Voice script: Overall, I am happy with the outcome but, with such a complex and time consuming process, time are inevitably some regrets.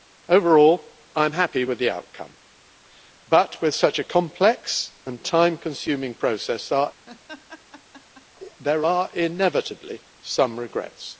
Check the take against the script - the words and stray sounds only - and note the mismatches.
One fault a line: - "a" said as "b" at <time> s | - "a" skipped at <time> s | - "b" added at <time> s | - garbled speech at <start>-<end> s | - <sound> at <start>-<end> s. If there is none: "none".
- laugh at 7.1-8.3 s
- "time" said as "there" at 8.6 s